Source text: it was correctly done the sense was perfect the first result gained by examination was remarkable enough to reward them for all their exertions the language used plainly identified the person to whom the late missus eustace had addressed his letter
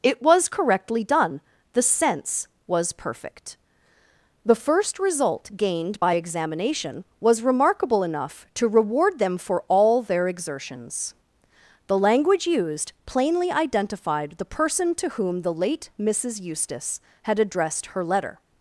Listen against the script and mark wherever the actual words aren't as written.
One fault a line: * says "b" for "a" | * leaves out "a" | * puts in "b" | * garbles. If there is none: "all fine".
* says "her" for "his"